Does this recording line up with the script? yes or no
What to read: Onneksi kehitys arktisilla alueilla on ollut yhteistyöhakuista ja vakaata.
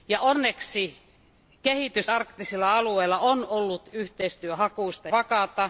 no